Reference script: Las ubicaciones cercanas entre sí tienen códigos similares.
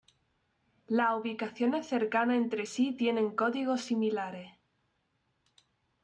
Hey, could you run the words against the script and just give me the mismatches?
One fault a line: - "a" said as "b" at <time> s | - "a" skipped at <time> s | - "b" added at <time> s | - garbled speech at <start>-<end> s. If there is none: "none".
none